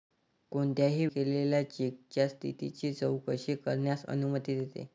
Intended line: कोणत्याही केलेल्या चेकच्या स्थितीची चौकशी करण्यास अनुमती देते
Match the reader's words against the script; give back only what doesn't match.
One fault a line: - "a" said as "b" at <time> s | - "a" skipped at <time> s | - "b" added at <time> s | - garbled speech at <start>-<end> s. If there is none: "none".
none